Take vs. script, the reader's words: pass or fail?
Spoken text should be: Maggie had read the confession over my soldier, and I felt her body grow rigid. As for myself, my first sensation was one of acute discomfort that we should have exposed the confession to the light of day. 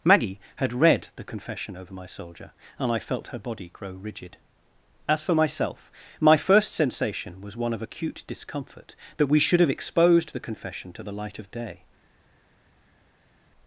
pass